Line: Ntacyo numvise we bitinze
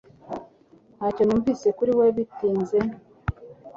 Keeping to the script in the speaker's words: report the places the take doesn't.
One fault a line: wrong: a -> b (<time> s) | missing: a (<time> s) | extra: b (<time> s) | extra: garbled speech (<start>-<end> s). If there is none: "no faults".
extra: kuri (1.8 s)